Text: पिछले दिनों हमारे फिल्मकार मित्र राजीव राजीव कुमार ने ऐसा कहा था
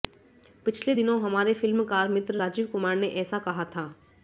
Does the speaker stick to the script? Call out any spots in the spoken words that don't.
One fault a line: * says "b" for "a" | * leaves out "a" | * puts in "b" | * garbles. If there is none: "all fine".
* leaves out "राजीव"